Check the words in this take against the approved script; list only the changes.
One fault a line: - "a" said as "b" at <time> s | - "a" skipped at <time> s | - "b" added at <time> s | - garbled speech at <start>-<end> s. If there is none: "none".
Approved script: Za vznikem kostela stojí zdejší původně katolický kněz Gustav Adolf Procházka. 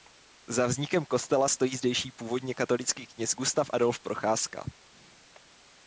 none